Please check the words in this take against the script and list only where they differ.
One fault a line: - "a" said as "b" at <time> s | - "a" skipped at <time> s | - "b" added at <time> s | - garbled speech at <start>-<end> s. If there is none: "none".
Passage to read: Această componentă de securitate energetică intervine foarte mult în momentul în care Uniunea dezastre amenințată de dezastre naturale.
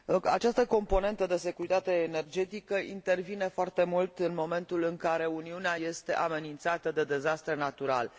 - "dezastre" said as "este" at 5.7 s